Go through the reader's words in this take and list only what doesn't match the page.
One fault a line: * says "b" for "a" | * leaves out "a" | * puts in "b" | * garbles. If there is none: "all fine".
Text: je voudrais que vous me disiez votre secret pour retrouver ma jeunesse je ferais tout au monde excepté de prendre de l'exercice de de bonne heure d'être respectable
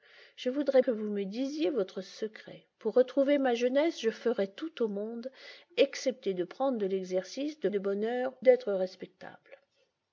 all fine